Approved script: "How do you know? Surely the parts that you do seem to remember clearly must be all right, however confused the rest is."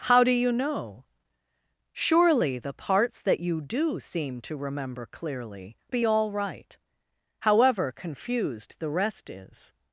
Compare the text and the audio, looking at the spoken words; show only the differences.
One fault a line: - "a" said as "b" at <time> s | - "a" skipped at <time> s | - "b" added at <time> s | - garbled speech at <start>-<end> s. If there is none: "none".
- "must" skipped at 5.8 s